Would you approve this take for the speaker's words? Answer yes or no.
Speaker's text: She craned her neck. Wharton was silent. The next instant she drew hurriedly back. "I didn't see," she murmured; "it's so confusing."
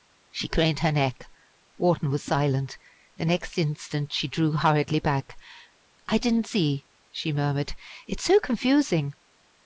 yes